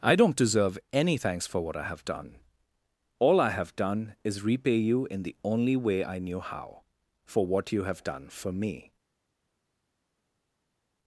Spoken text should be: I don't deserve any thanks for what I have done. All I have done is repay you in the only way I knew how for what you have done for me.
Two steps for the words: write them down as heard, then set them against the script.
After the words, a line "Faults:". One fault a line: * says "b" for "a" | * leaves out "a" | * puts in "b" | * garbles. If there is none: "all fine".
I don't deserve any thanks for what I have done. All I have done is repay you in the only way I knew how for what you have done for me.
Faults:
all fine